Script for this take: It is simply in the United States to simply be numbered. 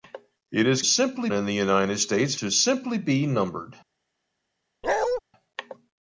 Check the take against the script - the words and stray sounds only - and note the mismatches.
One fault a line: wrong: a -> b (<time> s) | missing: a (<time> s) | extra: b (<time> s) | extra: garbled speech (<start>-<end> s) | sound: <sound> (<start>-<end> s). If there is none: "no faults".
sound: bark (4.8-5.2 s)